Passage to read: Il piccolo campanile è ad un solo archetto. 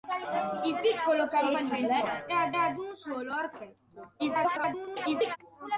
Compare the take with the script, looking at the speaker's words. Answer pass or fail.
fail